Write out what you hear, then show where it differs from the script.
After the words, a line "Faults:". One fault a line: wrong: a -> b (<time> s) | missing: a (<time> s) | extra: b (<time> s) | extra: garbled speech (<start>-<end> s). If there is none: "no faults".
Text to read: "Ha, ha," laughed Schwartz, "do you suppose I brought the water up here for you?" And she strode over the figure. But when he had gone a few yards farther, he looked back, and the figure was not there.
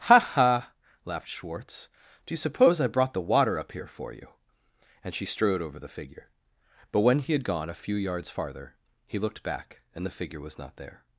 "Ha, ha," laughed Schwartz, "do you suppose I brought the water up here for you?" And she strode over the figure. But when he had gone a few yards farther, he looked back, and the figure was not there.
Faults:
no faults